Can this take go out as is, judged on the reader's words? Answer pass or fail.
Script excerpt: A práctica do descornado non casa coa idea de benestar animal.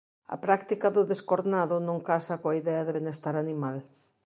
pass